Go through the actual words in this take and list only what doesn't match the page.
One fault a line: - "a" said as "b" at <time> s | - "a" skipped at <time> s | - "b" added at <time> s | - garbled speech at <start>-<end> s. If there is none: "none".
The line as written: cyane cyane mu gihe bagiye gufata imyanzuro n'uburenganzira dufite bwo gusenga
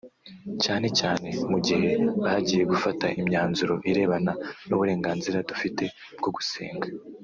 - "irebana" added at 3.9 s